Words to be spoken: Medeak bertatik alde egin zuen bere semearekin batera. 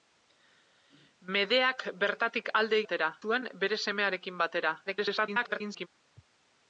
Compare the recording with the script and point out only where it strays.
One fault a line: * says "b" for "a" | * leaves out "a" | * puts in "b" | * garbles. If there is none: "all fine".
* says "batera" for "egin"
* garbles